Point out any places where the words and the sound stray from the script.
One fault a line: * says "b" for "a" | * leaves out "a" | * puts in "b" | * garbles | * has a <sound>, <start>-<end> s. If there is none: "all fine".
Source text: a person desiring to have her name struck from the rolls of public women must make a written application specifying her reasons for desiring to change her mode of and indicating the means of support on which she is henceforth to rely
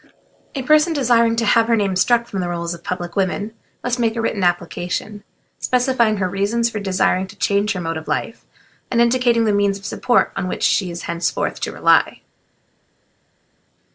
* puts in "life"